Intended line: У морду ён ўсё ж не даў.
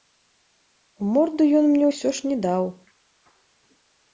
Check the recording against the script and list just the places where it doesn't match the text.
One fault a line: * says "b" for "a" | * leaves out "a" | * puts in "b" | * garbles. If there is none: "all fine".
* puts in "мне"